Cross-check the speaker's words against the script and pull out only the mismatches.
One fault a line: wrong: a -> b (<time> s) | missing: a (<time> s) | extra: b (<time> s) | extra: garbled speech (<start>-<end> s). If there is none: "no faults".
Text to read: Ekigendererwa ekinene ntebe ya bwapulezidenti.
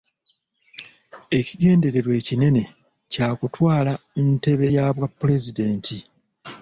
extra: kya kutwala (3.1 s)